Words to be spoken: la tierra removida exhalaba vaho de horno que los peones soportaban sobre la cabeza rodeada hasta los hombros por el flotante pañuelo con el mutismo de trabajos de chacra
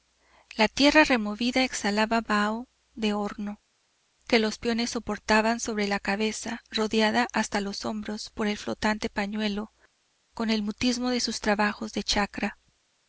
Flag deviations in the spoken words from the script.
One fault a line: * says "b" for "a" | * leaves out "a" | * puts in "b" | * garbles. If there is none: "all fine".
* puts in "sus"